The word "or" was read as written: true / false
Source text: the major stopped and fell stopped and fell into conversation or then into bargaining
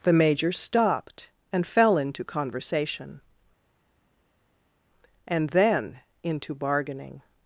false